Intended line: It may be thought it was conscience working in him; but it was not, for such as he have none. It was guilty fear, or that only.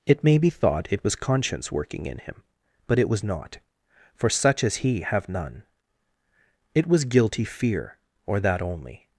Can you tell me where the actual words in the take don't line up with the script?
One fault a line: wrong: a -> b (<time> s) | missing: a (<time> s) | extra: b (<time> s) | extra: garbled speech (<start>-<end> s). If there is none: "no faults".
no faults